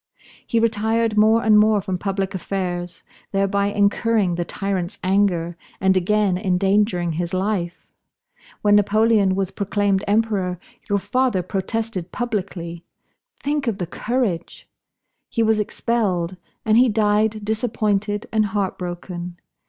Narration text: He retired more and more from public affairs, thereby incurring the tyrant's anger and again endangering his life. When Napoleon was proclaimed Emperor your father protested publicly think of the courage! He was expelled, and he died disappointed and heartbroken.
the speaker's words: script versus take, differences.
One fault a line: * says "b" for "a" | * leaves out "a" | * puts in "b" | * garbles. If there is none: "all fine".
all fine